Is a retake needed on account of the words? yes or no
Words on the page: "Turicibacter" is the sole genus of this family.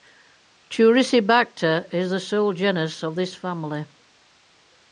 no